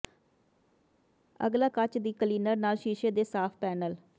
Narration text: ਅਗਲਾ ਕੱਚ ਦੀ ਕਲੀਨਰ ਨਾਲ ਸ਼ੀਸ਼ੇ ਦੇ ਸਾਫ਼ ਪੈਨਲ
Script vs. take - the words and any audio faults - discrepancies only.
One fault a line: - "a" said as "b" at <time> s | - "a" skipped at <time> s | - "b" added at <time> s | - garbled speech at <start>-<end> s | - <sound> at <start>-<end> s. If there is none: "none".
none